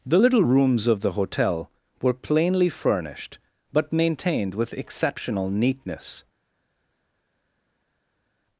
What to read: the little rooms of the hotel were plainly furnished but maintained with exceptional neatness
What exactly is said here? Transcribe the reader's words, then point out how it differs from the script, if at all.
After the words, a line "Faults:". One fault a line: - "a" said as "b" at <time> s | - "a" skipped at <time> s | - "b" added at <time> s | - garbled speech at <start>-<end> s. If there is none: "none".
the little rooms of the hotel were plainly furnished but maintained with exceptional neatness
Faults:
none